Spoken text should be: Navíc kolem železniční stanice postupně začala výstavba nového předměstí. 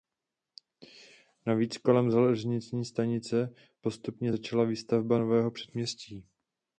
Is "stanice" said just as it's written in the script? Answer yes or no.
yes